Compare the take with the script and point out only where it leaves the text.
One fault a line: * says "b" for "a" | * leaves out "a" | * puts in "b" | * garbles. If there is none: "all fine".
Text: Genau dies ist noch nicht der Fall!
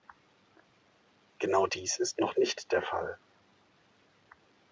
all fine